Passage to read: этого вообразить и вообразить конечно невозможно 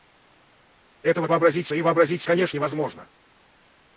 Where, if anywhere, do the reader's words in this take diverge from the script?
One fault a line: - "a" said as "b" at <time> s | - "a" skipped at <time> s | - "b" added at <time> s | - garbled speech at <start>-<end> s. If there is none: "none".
none